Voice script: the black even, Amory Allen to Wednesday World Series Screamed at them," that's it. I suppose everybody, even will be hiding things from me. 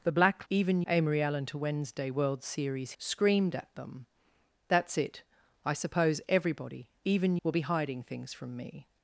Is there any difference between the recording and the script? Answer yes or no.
no